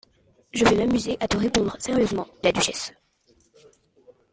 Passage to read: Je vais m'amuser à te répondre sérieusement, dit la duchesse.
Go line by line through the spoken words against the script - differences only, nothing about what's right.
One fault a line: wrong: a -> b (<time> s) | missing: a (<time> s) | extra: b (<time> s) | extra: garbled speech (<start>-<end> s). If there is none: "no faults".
missing: dit (2.2 s)